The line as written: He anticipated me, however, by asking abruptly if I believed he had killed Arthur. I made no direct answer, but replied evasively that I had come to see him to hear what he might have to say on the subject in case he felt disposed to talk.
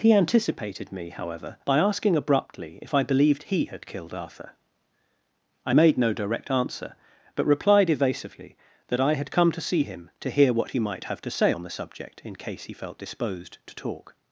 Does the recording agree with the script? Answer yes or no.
yes